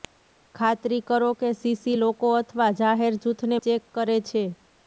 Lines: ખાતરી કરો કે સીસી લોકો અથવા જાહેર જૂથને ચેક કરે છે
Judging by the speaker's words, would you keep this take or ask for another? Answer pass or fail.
pass